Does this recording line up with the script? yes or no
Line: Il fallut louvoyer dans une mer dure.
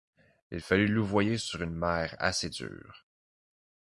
no